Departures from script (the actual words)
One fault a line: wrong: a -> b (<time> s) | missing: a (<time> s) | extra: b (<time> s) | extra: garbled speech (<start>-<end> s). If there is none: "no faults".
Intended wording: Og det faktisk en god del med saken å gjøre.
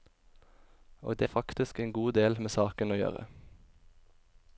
no faults